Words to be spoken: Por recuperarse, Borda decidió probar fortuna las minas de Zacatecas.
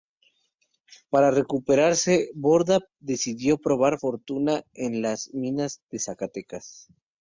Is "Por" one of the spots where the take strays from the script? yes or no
yes